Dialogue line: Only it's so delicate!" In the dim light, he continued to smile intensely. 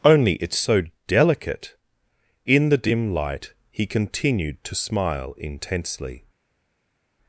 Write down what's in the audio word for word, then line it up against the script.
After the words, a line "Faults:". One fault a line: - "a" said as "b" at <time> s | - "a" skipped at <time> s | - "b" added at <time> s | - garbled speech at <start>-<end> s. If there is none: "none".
Only it's so delicate!" In the dim light, he continued to smile intensely.
Faults:
none